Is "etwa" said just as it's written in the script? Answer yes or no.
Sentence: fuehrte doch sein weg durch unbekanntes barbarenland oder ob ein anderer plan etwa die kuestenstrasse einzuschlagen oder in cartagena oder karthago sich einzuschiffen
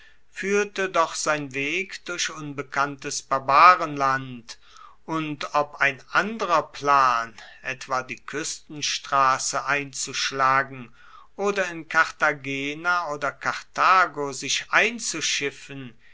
yes